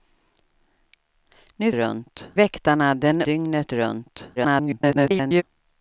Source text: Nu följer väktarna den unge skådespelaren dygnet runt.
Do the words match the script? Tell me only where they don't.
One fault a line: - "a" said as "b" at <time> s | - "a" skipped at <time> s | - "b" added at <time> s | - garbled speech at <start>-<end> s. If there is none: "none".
- "följer" said as "runt" at 1.7 s
- "unge skådespelaren" skipped at 3.2 s
- garbled speech at 4.4-5.4 s